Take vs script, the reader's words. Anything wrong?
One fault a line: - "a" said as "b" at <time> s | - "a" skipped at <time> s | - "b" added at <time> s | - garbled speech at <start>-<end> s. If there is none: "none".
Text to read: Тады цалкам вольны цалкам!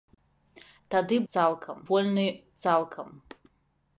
none